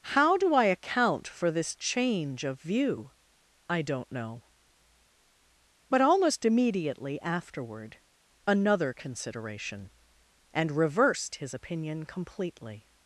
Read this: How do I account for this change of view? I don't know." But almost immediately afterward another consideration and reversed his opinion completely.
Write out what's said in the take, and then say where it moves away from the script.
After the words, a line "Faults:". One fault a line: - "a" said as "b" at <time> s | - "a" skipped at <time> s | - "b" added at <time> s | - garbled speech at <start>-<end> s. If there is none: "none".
How do I account for this change of view? I don't know." But almost immediately afterward another consideration and reversed his opinion completely.
Faults:
none